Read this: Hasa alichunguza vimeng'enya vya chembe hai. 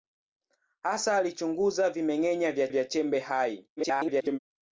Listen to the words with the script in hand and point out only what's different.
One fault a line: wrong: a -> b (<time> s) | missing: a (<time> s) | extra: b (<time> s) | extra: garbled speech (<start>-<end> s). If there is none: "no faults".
extra: vya (2.7 s)
extra: garbled speech (3.8-4.4 s)